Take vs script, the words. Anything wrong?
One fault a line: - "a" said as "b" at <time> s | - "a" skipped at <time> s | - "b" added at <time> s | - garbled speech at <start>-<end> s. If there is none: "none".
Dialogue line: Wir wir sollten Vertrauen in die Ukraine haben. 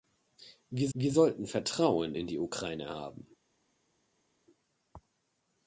none